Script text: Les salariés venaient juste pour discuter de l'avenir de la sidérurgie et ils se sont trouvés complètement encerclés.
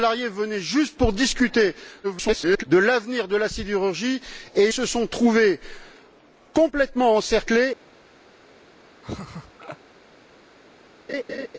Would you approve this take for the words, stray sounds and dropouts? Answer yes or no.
no